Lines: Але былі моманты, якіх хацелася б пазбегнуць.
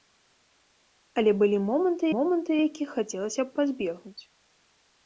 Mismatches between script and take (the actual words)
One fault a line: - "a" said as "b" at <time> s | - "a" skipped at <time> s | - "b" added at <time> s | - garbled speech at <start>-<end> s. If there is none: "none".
- "моманты" added at 2.1 s